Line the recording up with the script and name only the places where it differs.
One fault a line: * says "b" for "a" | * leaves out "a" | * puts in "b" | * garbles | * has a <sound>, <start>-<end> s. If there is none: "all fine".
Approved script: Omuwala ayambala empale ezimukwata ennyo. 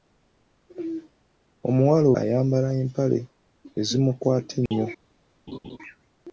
* has a dropout, 4.7-4.7 s
* has a laugh, 5.5-5.8 s